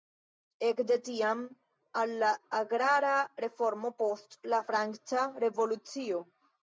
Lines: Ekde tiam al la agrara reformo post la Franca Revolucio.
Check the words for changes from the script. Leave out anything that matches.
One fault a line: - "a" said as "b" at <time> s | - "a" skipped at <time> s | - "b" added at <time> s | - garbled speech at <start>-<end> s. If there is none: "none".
none